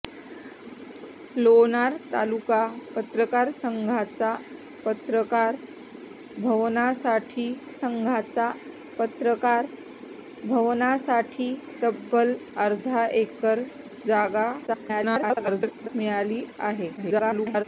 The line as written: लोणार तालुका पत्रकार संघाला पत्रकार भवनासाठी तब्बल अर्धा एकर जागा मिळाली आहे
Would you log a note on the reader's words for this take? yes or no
yes